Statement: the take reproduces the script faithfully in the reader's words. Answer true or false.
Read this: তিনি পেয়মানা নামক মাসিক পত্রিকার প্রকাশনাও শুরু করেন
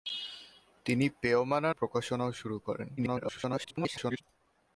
false